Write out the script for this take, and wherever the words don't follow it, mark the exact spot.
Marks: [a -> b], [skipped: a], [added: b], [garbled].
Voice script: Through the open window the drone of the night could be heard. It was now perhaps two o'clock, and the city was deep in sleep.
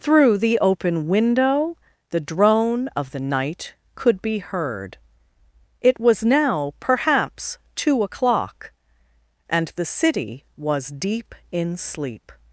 Through the open window the drone of the night could be heard. It was now perhaps two o'clock, and the city was deep in sleep.